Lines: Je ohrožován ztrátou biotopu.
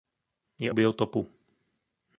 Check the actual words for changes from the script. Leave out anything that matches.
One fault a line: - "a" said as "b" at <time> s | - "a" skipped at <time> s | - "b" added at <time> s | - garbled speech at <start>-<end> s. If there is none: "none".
- "ohrožován ztrátou" skipped at 0.7 s